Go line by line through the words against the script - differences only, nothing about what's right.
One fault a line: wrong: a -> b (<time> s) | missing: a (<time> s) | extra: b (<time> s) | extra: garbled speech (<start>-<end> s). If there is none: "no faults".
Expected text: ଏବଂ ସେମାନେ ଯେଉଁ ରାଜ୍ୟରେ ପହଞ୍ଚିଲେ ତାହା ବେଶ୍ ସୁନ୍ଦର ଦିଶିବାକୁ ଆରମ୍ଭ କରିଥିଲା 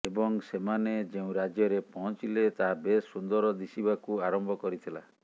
no faults